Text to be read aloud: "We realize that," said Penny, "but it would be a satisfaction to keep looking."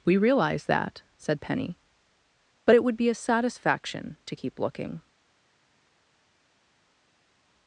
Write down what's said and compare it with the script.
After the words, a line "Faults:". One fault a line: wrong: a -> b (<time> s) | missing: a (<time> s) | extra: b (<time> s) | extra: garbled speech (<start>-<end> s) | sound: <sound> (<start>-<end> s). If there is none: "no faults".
"We realize that," said Penny, "but it would be a satisfaction to keep looking."
Faults:
no faults